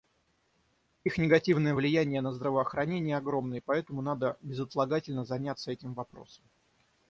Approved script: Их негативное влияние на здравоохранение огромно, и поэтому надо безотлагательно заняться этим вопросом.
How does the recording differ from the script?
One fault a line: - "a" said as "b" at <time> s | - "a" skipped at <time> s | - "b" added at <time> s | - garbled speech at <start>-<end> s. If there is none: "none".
none